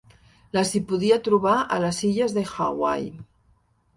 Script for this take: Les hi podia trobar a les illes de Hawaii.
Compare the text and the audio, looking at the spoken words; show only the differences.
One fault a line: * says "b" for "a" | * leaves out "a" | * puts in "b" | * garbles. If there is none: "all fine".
all fine